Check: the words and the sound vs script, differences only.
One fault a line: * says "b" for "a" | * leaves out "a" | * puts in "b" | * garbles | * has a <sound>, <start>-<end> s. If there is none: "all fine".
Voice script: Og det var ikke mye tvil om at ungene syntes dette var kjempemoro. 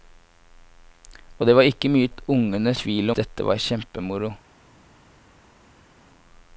* leaves out "tvil om"
* says "tvil" for "syntes"